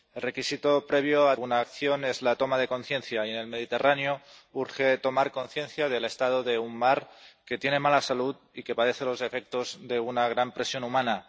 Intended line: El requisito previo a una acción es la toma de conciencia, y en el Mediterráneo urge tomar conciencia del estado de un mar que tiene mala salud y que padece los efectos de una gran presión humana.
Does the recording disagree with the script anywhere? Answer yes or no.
no